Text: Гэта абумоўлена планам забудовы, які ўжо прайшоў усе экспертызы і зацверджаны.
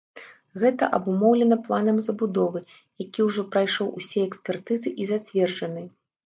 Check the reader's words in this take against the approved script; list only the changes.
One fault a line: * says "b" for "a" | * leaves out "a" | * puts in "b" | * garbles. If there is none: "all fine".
all fine